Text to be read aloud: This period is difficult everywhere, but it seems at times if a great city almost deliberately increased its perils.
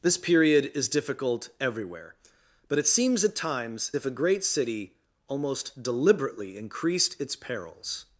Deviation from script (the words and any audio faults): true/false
false